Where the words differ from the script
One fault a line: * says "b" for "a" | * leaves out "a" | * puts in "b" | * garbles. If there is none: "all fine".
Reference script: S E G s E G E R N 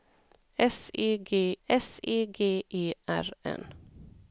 all fine